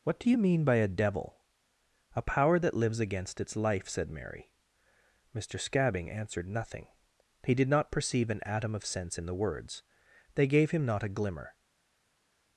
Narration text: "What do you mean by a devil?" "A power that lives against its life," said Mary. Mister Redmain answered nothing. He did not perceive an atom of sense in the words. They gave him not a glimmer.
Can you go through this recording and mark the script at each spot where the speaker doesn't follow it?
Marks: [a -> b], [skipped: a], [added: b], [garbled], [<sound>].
"What do you mean by a devil?" "A power that lives against its life," said Mary. Mister [Redmain -> Scabbing] answered nothing. He did not perceive an atom of sense in the words. They gave him not a glimmer.